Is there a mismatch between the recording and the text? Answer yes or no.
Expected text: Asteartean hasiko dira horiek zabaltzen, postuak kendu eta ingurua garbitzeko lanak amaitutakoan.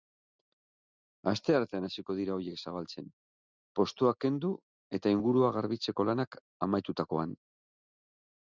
no